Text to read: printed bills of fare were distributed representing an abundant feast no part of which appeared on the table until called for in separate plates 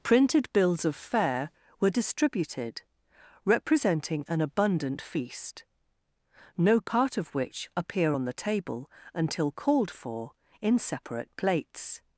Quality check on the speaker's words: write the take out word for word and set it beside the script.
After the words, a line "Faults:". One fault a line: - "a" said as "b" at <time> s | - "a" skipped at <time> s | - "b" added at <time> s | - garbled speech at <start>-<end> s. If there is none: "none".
printed bills of fare were distributed representing an abundant feast no part of which appear on the table until called for in separate plates
Faults:
- "appeared" said as "appear" at 7.8 s